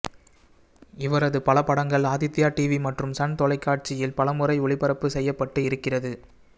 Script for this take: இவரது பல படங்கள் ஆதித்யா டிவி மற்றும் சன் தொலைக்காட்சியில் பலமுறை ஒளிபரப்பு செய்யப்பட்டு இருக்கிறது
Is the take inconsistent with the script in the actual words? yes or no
no